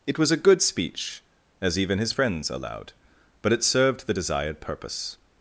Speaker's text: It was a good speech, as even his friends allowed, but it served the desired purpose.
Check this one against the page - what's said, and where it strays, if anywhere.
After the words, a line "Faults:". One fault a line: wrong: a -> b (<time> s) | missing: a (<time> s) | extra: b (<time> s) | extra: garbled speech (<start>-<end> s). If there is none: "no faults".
It was a good speech, as even his friends allowed, but it served the desired purpose.
Faults:
no faults